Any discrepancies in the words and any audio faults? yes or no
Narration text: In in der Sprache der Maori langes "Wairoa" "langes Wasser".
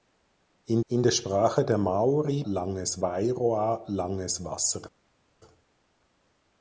no